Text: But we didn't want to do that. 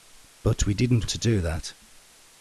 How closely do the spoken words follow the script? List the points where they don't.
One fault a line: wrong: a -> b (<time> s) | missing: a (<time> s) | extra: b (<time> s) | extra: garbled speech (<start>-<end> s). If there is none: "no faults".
missing: want (1.1 s)